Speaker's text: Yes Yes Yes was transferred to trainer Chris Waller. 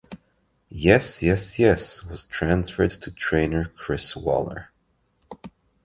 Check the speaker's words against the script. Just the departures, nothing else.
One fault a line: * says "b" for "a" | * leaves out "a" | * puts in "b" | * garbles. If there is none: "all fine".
all fine